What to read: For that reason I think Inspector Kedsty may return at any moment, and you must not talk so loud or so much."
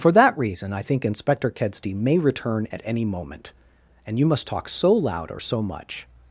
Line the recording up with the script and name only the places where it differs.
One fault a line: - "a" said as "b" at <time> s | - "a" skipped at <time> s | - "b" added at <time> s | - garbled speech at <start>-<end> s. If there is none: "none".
- "not" skipped at 4.5 s